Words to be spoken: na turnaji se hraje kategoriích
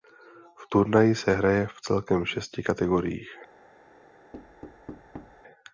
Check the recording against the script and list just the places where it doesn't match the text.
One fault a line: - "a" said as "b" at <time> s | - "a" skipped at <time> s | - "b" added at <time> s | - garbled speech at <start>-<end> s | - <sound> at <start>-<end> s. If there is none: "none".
- "na" said as "v" at 0.6 s
- "v celkem šesti" added at 1.6 s
- thud at 4.3-5.4 s